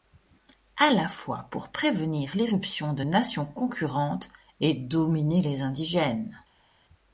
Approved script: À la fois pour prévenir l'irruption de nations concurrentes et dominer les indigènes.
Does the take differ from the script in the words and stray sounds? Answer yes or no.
no